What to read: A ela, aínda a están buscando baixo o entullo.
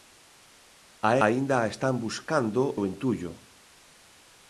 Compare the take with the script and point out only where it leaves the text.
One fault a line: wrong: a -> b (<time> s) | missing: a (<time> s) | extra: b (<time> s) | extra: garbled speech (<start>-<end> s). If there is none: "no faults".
missing: ela (1.1 s)
missing: baixo (2.6 s)